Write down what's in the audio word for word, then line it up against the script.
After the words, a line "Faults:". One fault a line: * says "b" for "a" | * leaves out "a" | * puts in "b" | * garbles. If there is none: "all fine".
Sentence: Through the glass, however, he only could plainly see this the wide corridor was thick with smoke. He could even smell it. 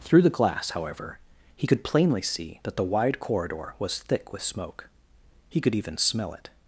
Through the glass, however, he could plainly see that the wide corridor was thick with smoke. He could even smell it.
Faults:
* leaves out "only"
* says "that" for "this"